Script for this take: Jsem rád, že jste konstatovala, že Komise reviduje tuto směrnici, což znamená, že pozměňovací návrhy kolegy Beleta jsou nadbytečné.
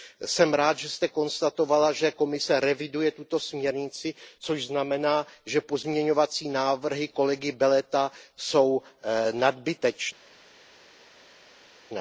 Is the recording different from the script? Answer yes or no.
no